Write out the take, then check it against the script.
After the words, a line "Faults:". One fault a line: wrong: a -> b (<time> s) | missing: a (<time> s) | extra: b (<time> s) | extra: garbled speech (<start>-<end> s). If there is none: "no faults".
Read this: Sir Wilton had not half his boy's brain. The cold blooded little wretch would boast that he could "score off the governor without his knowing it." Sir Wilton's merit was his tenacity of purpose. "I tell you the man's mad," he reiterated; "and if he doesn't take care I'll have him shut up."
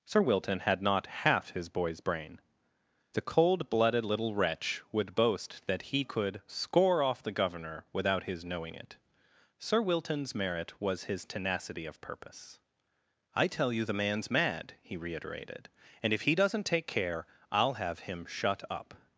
Sir Wilton had not half his boy's brain. The cold blooded little wretch would boast that he could "score off the governor without his knowing it." Sir Wilton's merit was his tenacity of purpose. "I tell you the man's mad," he reiterated; "and if he doesn't take care I'll have him shut up."
Faults:
no faults